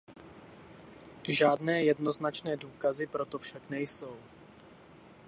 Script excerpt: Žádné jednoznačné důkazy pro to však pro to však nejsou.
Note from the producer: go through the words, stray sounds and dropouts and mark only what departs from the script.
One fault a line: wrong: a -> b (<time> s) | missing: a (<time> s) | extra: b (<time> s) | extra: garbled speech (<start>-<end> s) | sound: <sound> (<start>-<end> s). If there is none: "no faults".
missing: pro to však (3.7 s)